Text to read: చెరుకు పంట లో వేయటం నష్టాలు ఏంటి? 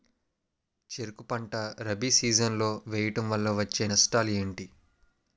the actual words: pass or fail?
fail